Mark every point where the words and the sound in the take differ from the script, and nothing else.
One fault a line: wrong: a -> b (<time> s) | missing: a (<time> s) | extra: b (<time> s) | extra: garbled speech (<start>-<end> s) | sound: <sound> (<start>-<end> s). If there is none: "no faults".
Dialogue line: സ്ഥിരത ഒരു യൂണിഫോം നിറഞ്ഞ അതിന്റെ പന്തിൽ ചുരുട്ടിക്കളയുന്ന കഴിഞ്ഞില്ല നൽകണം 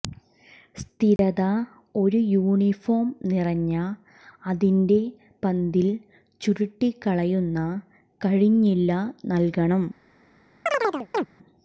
sound: dropout (1.2-1.2 s)
sound: chirp (10.7-11.3 s)